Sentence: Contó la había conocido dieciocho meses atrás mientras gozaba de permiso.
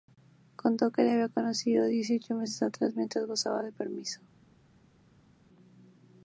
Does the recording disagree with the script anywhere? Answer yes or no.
yes